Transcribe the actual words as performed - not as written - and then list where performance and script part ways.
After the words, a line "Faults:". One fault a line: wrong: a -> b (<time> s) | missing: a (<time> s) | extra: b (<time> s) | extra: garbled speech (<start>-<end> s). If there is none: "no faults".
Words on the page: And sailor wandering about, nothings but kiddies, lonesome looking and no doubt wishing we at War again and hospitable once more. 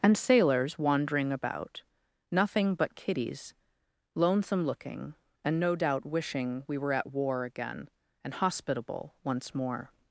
And sailors wandering about, nothing but kiddies, lonesome looking and no doubt wishing we were at War again and hospitable once more.
Faults:
wrong: sailor -> sailors (0.2 s)
wrong: nothings -> nothing (2.3 s)
extra: were (6.8 s)